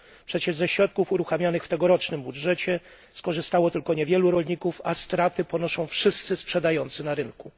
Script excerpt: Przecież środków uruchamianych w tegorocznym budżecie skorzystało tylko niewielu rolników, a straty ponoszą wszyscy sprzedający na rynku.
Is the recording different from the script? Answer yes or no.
yes